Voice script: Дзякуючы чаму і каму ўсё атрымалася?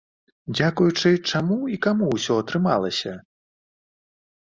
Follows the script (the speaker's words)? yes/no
yes